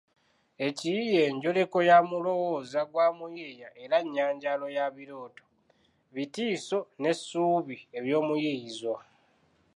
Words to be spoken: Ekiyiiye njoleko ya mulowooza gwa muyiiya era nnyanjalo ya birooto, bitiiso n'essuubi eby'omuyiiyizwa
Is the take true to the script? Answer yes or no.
yes